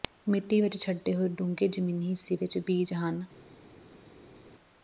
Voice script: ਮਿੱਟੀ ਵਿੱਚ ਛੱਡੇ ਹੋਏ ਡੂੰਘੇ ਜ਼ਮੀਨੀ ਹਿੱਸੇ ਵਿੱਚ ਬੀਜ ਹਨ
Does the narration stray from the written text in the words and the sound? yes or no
no